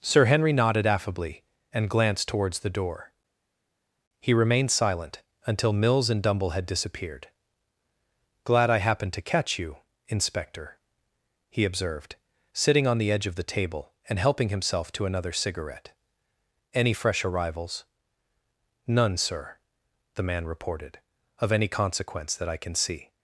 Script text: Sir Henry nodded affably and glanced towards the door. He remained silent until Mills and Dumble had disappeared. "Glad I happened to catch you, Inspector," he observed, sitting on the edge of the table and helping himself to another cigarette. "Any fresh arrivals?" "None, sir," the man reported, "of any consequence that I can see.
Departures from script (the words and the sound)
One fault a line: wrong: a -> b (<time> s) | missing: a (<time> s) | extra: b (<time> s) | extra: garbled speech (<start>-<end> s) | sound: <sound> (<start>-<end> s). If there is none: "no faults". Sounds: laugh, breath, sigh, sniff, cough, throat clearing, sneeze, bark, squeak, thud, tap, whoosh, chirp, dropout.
no faults